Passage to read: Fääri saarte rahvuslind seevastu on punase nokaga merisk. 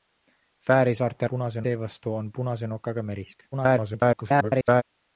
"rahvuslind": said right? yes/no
no